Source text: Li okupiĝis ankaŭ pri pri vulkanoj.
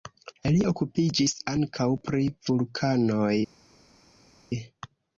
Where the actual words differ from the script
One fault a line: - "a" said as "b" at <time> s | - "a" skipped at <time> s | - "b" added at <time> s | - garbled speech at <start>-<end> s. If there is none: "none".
- "pri" skipped at 2.3 s